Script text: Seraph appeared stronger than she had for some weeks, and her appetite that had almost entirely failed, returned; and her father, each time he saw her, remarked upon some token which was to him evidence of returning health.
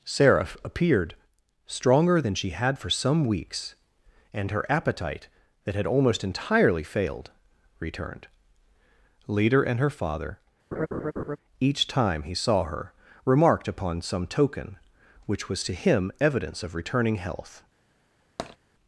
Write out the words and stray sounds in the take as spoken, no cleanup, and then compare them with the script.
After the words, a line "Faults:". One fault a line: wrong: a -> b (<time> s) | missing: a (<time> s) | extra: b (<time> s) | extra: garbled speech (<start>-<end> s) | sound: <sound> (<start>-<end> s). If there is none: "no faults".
Seraph appeared stronger than she had for some weeks, and her appetite that had almost entirely failed, returned; leader and her father, each time he saw her, remarked upon some token which was to him evidence of returning health.
Faults:
extra: leader (9.3 s)
sound: laugh (10.7-11.4 s)
sound: tap (18.4-18.6 s)